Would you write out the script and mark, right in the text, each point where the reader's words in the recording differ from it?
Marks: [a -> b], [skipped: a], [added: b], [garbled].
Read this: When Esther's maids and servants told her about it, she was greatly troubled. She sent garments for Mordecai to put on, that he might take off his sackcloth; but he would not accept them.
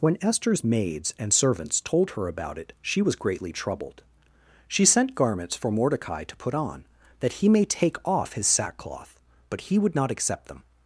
When Esther's maids and servants told her about it, she was greatly troubled. She sent garments for Mordecai to put on, that he [might -> may] take off his sackcloth; but he would not accept them.